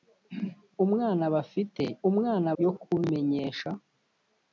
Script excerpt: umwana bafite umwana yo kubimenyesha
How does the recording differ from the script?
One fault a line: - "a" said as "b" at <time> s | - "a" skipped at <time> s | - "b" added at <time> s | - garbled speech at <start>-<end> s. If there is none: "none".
none